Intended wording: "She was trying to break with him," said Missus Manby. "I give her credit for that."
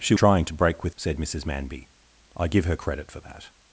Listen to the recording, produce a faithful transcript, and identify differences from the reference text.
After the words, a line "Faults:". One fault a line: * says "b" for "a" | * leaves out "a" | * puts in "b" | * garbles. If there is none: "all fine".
"She trying to break with," said Missus Manby. "I give her credit for that."
Faults:
* leaves out "was"
* leaves out "him"